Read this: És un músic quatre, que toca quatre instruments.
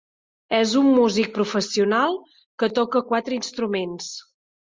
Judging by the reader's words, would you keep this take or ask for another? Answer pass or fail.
fail